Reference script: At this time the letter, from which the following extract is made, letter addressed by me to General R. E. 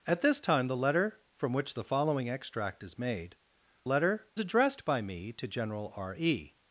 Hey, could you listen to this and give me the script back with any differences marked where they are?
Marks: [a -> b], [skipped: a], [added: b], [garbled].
At this time the letter, from which the following extract is made, letter addressed by me to General R. E.